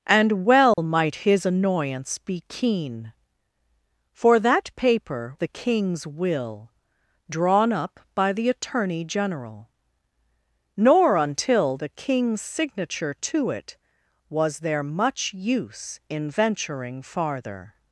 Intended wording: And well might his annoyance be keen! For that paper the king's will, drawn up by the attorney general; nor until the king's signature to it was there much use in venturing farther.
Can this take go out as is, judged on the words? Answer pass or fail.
pass